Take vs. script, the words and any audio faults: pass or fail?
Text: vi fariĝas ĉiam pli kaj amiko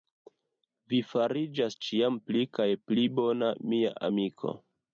fail